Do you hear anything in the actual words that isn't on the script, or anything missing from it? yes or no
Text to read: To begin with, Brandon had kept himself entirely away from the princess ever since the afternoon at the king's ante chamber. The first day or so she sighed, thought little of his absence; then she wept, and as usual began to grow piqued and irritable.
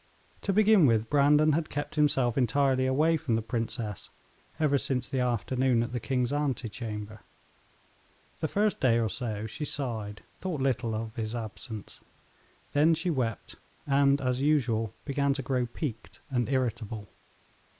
no